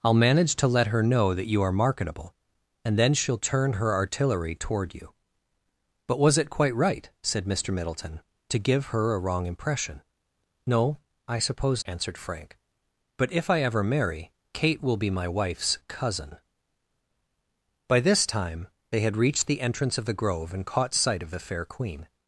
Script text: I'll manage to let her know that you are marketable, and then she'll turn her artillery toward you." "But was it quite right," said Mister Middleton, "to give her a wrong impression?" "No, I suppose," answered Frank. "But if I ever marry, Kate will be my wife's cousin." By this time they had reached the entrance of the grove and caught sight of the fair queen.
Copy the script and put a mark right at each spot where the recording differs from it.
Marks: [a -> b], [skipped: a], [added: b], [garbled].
I'll manage to let her know that you are marketable, and then she'll turn her artillery toward you." "But was it quite right," said Mister Middleton, "to give her a wrong impression?" "No, I suppose," answered Frank. "But if I ever marry, Kate will be my wife's cousin." By this time they had reached the entrance of the grove and caught sight of the fair queen.